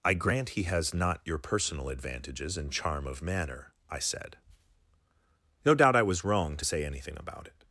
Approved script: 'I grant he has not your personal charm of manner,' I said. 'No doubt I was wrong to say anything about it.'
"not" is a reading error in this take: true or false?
false